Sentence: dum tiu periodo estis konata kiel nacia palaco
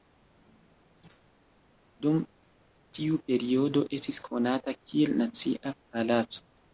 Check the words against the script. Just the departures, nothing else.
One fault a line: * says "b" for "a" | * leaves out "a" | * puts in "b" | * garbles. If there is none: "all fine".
all fine